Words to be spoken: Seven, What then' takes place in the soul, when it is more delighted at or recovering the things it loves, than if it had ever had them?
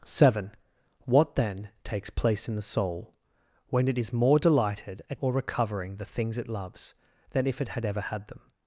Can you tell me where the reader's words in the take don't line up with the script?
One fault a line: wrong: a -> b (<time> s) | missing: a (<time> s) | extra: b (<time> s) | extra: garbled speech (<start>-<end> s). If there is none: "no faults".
no faults